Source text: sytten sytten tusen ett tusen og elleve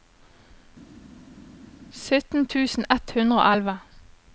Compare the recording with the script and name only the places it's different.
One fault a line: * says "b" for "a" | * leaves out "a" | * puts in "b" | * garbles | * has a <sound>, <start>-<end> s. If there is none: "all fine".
* leaves out "sytten"
* says "hundre" for "tusen"